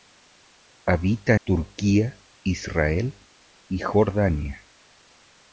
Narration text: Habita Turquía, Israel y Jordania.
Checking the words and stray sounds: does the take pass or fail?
pass